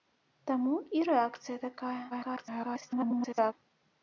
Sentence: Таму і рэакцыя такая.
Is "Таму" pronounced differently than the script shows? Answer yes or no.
no